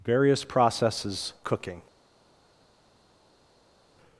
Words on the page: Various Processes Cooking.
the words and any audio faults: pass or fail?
pass